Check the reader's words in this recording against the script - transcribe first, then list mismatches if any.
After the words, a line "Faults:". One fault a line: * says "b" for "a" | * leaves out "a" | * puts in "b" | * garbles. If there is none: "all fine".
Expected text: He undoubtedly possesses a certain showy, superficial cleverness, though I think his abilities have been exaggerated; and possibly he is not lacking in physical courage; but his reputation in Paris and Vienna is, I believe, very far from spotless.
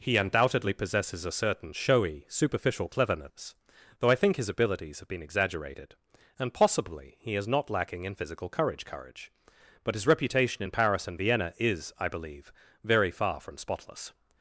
He undoubtedly possesses a certain showy, superficial cleverness, though I think his abilities have been exaggerated; and possibly he is not lacking in physical courage courage; but his reputation in Paris and Vienna is, I believe, very far from spotless.
Faults:
* puts in "courage"